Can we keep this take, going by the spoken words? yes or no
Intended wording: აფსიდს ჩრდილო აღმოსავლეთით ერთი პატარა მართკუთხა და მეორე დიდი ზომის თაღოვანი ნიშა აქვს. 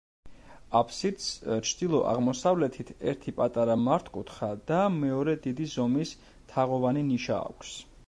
yes